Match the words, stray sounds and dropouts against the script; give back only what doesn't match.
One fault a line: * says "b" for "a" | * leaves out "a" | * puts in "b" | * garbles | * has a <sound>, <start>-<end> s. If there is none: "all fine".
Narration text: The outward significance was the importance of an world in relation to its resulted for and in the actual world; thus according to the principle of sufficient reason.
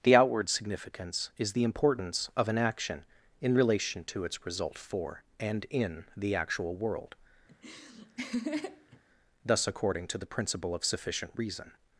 * says "is" for "was"
* says "action" for "world"
* says "result" for "resulted"
* has a laugh, 7.5-9.0 s